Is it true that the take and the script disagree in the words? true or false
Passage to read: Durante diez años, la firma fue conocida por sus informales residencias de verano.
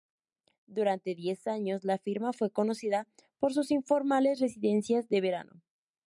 false